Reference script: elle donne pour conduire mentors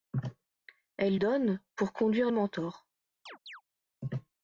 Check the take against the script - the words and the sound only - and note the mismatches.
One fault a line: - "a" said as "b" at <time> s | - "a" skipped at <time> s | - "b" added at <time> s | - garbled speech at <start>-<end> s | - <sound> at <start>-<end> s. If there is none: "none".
- chirp at 3.3-3.6 s